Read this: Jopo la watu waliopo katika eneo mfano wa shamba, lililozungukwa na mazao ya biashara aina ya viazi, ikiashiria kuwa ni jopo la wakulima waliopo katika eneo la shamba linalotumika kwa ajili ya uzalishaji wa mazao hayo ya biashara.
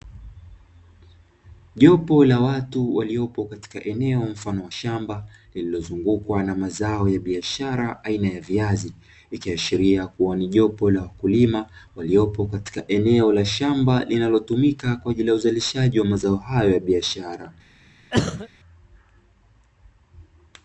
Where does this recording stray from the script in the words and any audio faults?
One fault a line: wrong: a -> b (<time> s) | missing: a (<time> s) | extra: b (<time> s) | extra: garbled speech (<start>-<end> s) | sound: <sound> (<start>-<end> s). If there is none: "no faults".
sound: cough (18.1-18.5 s)